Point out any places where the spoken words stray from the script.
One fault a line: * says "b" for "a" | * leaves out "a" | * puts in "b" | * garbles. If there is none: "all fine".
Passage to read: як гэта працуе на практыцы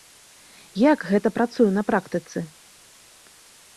all fine